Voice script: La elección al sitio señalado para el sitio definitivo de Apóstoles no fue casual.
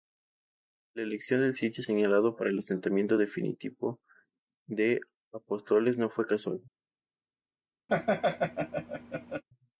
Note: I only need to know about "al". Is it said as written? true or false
false